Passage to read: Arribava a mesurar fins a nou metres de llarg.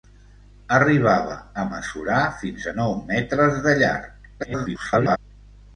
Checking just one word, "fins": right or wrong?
right